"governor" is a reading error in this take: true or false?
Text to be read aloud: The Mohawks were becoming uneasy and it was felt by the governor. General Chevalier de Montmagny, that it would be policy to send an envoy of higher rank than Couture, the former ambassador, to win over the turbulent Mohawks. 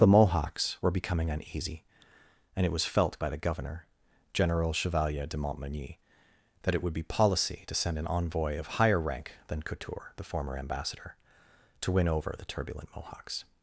false